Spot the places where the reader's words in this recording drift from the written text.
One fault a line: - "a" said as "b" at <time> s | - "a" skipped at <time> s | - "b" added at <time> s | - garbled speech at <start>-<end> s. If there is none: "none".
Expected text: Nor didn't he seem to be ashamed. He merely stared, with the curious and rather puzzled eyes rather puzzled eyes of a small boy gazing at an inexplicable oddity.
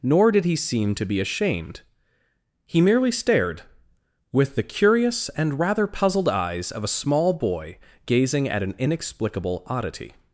- "didn't" said as "did" at 0.3 s
- "rather puzzled eyes" skipped at 6.7 s